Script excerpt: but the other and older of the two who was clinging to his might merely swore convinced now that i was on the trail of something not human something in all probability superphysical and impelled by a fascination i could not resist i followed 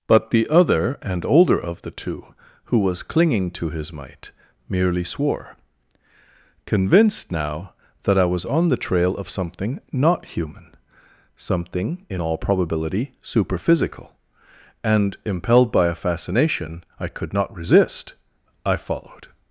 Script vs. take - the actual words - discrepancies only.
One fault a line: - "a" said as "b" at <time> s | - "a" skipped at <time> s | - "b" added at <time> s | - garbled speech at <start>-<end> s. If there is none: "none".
none